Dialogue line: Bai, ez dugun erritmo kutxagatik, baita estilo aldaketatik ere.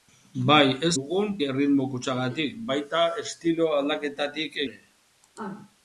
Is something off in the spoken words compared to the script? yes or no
no